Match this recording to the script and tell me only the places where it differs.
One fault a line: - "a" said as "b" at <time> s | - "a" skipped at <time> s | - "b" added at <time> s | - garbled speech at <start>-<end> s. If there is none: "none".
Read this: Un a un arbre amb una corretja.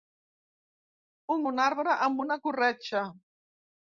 none